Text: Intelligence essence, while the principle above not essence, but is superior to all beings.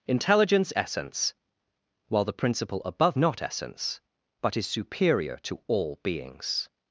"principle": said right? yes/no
yes